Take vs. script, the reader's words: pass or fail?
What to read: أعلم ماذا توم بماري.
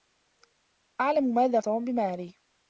pass